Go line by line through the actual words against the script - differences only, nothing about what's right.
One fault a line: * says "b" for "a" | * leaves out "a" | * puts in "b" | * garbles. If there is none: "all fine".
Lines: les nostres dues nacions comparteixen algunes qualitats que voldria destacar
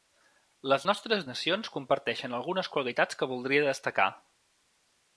* leaves out "dues"